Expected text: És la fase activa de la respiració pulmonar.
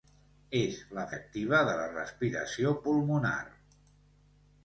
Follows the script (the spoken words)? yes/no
no